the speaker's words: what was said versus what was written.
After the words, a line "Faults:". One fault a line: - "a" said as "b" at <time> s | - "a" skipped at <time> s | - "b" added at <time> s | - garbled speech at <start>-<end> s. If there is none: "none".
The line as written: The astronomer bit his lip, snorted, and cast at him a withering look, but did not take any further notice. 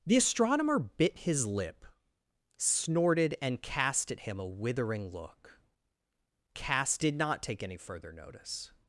The astronomer bit his lip, snorted, and cast at him a withering look, cast did not take any further notice.
Faults:
- "but" said as "cast" at 6.5 s